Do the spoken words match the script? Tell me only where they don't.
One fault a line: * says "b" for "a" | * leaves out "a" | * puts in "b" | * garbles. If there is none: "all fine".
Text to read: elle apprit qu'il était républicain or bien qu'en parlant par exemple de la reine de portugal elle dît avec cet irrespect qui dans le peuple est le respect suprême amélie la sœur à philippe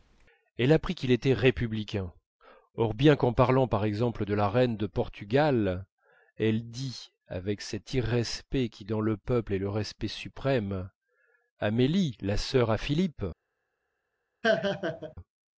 all fine